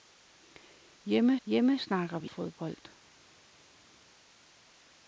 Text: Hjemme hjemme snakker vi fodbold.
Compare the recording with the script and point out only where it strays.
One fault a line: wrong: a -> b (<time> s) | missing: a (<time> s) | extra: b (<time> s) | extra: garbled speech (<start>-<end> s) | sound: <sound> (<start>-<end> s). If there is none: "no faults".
no faults